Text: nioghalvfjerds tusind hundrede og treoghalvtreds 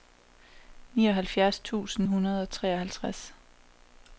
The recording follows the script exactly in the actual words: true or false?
true